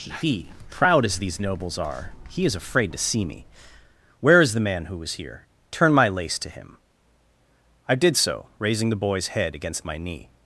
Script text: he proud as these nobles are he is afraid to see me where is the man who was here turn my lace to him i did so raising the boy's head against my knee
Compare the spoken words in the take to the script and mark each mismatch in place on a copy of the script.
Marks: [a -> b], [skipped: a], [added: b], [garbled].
he proud as these nobles are he is afraid to see me where is the man who was here turn my lace to him i did so raising the boy's head against my knee